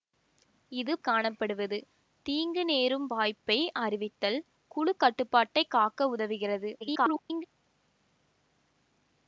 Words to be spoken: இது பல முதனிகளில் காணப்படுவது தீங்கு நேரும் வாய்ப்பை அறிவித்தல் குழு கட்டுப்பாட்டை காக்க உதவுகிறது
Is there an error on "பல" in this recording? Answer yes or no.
yes